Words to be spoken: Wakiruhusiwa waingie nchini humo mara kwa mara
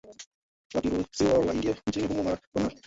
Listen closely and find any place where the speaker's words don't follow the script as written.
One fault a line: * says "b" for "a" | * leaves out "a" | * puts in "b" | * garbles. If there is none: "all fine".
all fine